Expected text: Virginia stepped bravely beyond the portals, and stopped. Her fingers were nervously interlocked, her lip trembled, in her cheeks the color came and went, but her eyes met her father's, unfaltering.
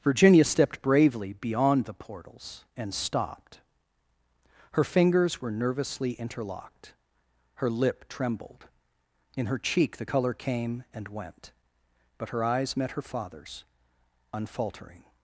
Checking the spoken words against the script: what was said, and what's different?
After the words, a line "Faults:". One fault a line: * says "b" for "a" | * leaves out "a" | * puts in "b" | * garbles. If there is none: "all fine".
Virginia stepped bravely beyond the portals, and stopped. Her fingers were nervously interlocked, her lip trembled, in her cheek the color came and went, but her eyes met her father's, unfaltering.
Faults:
* says "cheek" for "cheeks"